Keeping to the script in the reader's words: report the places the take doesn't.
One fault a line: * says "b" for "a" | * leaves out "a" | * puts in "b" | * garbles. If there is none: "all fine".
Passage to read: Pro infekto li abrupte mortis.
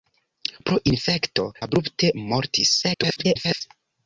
* leaves out "li"
* garbles